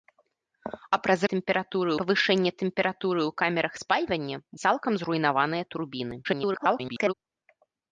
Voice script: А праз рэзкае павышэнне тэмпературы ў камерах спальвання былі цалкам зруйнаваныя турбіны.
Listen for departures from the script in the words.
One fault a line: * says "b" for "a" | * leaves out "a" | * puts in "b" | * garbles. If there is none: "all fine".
* says "тэмпературы" for "рэзкае"
* leaves out "былі"
* garbles